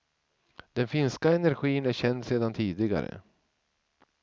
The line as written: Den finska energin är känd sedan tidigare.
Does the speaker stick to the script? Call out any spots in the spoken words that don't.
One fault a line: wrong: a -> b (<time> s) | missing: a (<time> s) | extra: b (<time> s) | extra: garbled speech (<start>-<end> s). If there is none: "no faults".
no faults